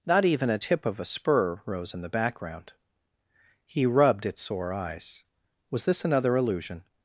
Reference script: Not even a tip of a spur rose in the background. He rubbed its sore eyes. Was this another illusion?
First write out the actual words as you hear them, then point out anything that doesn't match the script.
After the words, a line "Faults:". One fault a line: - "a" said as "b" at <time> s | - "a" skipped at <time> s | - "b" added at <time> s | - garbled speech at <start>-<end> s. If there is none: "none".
Not even a tip of a spur rose in the background. He rubbed its sore eyes. Was this another illusion?
Faults:
none